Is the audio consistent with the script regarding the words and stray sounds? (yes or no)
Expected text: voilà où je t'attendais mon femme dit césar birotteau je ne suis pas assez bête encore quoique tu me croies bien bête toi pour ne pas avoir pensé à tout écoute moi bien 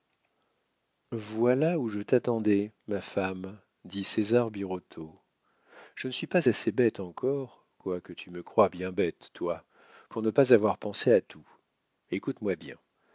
no